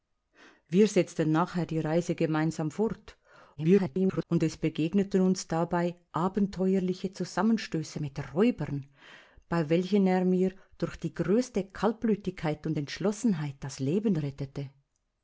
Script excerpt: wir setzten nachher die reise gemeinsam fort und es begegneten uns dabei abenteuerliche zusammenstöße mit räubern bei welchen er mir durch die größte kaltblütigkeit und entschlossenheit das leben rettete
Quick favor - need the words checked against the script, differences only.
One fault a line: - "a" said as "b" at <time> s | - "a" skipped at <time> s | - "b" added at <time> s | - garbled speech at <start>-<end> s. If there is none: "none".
- garbled speech at 3.6-4.2 s